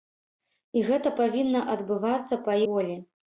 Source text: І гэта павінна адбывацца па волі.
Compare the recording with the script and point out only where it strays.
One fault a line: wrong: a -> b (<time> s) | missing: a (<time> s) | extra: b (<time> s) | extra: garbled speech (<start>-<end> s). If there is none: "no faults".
no faults